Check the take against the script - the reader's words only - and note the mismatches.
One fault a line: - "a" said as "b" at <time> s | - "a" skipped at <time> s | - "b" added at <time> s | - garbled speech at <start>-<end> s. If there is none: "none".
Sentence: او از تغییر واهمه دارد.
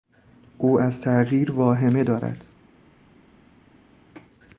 none